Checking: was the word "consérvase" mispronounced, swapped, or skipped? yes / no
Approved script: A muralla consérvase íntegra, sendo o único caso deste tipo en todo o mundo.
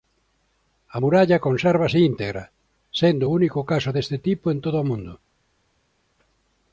no